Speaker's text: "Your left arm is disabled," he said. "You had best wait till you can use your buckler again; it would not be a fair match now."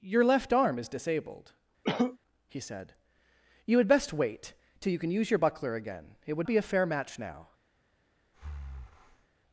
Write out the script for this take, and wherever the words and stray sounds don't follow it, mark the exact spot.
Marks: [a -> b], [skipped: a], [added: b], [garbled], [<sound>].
"Your left arm is disabled," [cough] he said. "You had best wait till you can use your buckler again; it would [skipped: not] be a fair match now." [breath]